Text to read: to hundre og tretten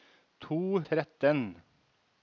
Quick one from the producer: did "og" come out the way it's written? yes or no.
no